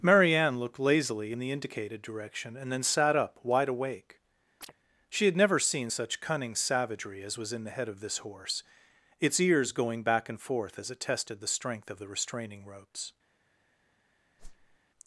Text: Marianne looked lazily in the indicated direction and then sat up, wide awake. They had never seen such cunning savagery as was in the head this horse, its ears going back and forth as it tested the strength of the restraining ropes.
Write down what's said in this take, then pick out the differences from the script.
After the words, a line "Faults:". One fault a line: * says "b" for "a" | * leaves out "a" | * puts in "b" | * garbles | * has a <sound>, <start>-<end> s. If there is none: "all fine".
Marianne looked lazily in the indicated direction and then sat up, wide awake. She had never seen such cunning savagery as was in the head of this horse, its ears going back and forth as it tested the strength of the restraining ropes.
Faults:
* has a chirp, 4.6-4.7 s
* says "She" for "They"
* puts in "of"
* has a whoosh, 14.4-14.8 s